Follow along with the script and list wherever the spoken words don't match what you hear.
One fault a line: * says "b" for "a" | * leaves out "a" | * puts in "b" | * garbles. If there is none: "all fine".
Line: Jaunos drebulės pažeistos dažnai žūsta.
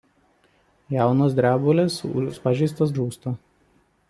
* leaves out "dažnai"